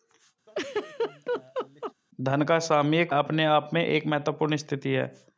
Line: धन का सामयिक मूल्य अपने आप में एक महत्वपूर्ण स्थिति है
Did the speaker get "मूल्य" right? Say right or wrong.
wrong